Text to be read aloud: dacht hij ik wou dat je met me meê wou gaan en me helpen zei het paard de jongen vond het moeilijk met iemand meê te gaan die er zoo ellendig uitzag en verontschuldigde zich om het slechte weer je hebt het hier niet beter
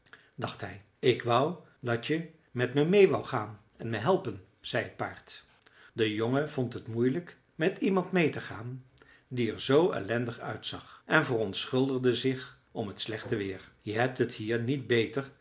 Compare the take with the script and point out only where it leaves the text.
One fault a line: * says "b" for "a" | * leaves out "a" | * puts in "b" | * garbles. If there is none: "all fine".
all fine